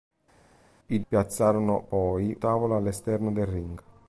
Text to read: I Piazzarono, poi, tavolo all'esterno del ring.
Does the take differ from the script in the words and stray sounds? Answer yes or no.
no